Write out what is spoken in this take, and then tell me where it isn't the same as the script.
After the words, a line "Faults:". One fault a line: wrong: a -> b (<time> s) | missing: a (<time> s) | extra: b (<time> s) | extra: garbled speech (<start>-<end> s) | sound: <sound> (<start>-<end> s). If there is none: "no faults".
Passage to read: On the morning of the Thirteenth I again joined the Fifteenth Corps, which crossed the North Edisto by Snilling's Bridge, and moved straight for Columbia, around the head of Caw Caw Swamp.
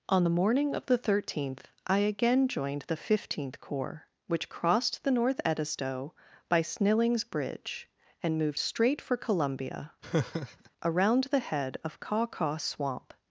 On the morning of the Thirteenth I again joined the Fifteenth Corps, which crossed the North Edisto by Snilling's Bridge, and moved straight for Columbia, around the head of Caw Caw Swamp.
Faults:
sound: laugh (10.0-10.7 s)